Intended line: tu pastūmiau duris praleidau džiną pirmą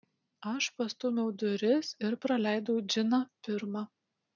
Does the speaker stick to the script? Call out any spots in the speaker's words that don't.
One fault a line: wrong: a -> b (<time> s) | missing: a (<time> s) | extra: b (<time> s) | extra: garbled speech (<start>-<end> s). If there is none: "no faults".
wrong: tu -> aš (0.5 s)
extra: ir (2.1 s)